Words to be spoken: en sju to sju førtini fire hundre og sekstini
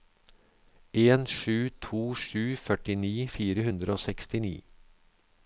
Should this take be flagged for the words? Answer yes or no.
no